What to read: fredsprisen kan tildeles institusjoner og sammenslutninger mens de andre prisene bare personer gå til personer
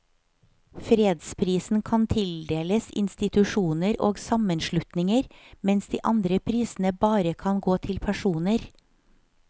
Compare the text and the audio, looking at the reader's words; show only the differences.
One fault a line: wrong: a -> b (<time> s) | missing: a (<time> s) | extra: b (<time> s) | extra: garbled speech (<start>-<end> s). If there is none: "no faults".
wrong: personer -> kan (7.3 s)